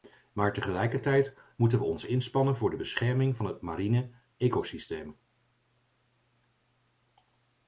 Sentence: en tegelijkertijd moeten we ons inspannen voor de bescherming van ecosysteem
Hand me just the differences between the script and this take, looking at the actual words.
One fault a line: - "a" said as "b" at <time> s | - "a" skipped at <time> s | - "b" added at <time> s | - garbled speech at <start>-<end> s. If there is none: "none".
- "en" said as "maar" at 0.3 s
- "het mariene" added at 3.5 s